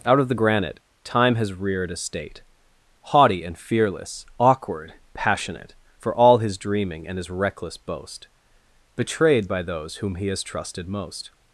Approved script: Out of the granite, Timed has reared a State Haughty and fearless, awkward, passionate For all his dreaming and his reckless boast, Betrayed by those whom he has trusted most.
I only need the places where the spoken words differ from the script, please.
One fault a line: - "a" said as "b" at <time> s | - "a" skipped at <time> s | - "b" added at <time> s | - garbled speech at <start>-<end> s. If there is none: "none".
- "Timed" said as "Time" at 1.0 s